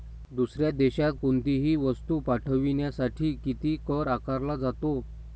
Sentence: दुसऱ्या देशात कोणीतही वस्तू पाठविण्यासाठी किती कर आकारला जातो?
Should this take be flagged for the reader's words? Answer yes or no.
no